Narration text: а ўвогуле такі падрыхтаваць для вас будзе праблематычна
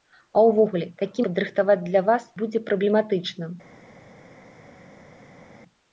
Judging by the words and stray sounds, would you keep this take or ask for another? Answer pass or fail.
pass